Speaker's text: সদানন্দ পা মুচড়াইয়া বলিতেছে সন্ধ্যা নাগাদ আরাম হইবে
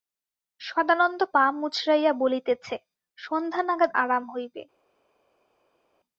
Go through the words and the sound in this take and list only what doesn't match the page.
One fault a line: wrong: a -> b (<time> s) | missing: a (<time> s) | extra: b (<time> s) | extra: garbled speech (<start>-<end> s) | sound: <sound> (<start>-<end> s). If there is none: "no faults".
no faults